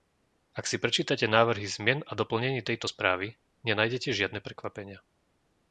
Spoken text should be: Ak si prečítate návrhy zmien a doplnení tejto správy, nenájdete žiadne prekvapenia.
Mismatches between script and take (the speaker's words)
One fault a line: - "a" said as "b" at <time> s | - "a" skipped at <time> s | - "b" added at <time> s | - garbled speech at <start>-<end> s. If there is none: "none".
none